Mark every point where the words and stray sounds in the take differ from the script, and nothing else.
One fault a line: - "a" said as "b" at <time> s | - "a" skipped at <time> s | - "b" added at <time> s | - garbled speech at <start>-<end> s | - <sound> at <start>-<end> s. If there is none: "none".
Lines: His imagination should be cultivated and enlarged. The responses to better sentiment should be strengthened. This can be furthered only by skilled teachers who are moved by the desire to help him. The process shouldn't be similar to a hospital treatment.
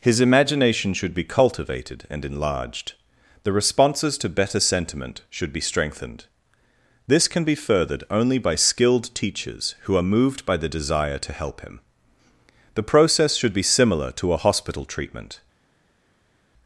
- "shouldn't" said as "should" at 13.3 s